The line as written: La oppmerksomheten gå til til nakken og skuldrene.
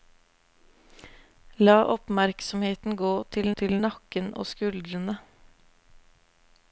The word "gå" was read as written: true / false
true